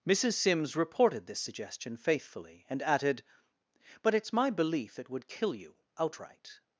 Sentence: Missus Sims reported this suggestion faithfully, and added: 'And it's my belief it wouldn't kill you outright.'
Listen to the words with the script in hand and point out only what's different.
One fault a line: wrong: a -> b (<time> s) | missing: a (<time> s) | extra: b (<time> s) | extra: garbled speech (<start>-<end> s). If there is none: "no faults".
wrong: And -> But (4.0 s)
wrong: wouldn't -> would (5.1 s)